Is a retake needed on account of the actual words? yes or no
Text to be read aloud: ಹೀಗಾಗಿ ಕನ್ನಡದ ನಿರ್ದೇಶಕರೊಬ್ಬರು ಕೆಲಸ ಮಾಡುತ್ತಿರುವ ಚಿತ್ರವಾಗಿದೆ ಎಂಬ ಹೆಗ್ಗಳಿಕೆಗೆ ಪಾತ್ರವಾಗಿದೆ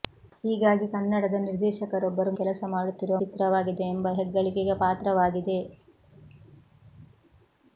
no